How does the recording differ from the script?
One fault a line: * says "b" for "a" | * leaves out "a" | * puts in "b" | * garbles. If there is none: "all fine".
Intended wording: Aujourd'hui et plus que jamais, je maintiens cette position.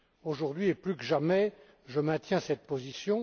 all fine